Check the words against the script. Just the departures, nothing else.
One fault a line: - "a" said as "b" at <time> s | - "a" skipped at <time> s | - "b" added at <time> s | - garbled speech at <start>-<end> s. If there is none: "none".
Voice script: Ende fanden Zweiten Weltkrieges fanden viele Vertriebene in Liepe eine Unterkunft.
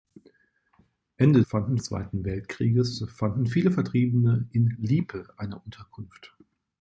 none